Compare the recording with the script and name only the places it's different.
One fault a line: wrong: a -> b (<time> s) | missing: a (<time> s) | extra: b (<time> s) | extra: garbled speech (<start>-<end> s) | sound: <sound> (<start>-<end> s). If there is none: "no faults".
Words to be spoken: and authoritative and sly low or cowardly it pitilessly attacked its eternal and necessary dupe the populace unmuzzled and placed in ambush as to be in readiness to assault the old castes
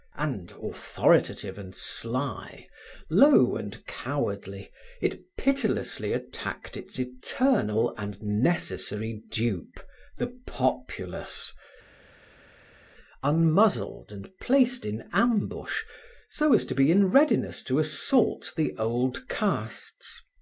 wrong: or -> and (3.5 s)
extra: so (16.3 s)